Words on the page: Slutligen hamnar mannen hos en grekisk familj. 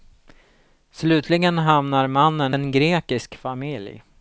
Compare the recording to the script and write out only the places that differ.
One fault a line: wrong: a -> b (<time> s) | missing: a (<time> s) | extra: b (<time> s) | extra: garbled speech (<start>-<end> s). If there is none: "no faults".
missing: hos (2.5 s)